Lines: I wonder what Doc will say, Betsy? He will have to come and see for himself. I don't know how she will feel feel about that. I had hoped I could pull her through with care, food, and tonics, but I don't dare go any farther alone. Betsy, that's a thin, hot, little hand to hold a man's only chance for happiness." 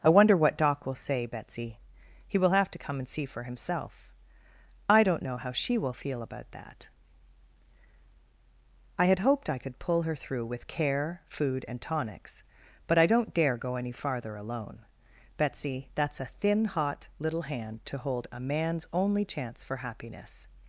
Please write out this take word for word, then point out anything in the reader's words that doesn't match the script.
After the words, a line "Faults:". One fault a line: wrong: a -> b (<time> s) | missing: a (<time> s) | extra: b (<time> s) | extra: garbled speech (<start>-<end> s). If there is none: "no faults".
I wonder what Doc will say, Betsy? He will have to come and see for himself. I don't know how she will feel about that. I had hoped I could pull her through with care, food, and tonics, but I don't dare go any farther alone. Betsy, that's a thin, hot, little hand to hold a man's only chance for happiness."
Faults:
missing: feel (6.2 s)